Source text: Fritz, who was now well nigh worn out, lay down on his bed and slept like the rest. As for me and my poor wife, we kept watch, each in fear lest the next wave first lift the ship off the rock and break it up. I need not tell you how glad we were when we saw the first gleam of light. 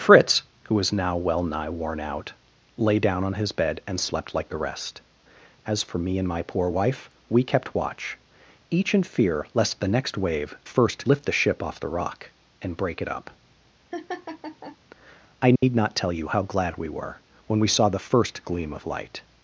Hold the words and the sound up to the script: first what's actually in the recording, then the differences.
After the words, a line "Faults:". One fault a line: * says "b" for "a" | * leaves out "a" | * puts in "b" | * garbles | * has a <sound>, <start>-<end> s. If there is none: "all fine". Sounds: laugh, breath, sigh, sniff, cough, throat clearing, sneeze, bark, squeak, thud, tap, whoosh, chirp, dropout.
Fritz, who was now well nigh worn out, lay down on his bed and slept like the rest. As for me and my poor wife, we kept watch, each in fear lest the next wave first lift the ship off the rock and break it up. I need not tell you how glad we were when we saw the first gleam of light.
Faults:
* has a laugh, 13.9-14.8 s
* has a dropout, 15.6-15.6 s